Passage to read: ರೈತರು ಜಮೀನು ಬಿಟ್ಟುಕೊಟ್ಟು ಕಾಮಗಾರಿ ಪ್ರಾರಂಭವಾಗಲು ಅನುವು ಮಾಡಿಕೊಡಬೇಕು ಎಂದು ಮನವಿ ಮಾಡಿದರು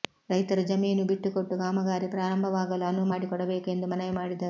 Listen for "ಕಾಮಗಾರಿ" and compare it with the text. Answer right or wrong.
right